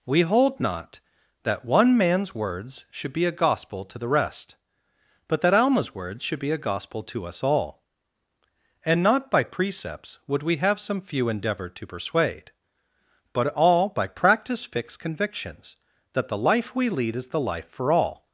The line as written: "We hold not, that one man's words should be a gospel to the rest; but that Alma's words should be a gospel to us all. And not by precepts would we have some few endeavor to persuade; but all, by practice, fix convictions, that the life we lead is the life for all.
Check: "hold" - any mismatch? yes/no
no